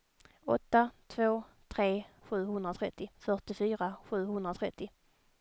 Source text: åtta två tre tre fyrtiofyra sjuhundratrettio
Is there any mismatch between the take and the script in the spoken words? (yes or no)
yes